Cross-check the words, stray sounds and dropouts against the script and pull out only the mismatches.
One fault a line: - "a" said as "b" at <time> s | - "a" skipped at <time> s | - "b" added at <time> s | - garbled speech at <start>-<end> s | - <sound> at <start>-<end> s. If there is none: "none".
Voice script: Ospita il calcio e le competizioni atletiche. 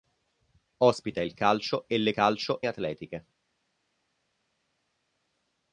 - "competizioni" said as "calcio" at 2.1 s